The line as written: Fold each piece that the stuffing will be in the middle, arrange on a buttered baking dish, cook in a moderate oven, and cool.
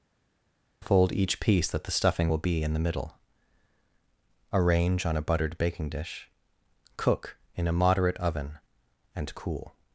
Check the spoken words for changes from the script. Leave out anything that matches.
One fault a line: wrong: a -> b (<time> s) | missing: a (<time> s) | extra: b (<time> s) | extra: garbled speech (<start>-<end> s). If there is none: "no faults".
no faults